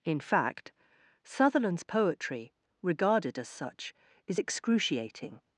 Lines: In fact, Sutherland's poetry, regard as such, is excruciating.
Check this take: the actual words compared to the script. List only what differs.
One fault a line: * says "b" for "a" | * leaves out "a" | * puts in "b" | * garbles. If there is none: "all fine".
* says "regarded" for "regard"